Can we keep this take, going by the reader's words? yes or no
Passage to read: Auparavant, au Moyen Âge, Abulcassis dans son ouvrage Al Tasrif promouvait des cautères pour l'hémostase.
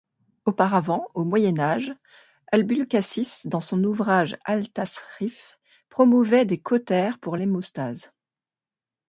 yes